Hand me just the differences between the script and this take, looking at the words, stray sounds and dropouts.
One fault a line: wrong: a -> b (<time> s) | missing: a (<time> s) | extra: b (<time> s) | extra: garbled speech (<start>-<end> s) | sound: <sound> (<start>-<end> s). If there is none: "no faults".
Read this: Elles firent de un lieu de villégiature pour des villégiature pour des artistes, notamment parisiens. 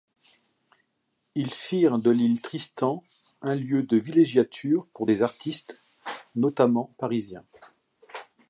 wrong: Elles -> Ils (1.4 s)
extra: l'Île Tristan (2.1 s)
missing: villégiature pour des (5.2 s)